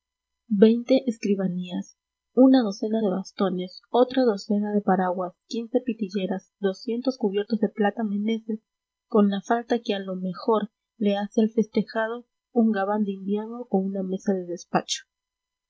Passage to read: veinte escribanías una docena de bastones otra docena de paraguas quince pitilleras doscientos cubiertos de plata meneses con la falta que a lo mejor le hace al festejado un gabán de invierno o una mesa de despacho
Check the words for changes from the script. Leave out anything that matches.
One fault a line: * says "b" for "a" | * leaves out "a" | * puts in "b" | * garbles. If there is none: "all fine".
all fine